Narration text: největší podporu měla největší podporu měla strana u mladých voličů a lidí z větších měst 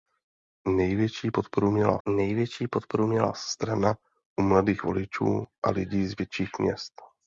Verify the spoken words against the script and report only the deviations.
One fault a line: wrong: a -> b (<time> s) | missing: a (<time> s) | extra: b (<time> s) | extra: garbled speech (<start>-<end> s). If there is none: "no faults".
no faults